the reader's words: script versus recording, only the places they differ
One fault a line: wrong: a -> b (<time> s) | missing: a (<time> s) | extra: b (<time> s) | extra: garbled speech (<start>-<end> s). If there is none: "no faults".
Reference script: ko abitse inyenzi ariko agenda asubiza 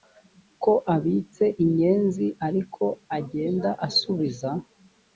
no faults